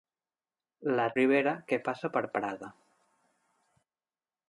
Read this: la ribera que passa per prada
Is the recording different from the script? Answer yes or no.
no